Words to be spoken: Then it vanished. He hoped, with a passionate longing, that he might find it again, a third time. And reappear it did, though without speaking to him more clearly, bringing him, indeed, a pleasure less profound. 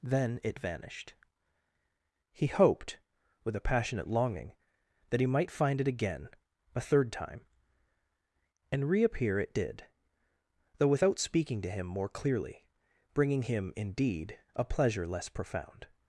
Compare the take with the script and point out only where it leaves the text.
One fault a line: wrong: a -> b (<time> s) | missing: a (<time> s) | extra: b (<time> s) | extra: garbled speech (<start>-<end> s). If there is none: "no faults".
no faults